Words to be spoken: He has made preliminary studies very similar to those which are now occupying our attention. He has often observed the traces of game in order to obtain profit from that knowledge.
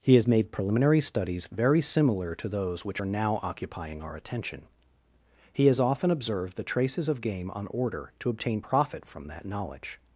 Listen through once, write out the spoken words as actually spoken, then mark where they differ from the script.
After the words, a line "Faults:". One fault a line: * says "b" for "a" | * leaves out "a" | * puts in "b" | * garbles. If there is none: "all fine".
He has made preliminary studies very similar to those which are now occupying our attention. He has often observed the traces of game on order to obtain profit from that knowledge.
Faults:
* says "on" for "in"